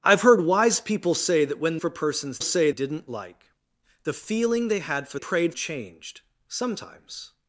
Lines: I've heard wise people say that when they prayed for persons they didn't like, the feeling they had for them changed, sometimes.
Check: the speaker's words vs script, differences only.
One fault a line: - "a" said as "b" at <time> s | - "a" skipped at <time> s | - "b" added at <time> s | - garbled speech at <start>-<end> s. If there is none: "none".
- "they prayed" skipped at 1.8 s
- "they" said as "say" at 2.4 s
- "them" said as "prayed" at 5.1 s